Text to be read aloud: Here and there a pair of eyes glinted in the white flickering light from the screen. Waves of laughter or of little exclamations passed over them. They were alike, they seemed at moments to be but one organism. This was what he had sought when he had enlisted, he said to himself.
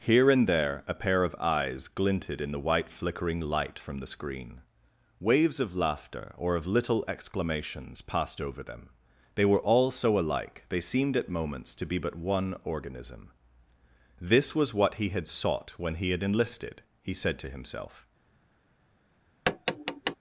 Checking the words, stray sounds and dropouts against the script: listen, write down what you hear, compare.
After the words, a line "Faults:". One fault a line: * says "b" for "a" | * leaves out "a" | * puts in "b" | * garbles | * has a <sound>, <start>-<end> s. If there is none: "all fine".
Here and there a pair of eyes glinted in the white flickering light from the screen. Waves of laughter or of little exclamations passed over them. They were all so alike, they seemed at moments to be but one organism. This was what he had sought when he had enlisted, he said to himself.
Faults:
* puts in "all so"
* has a tap, 19.5-20.2 s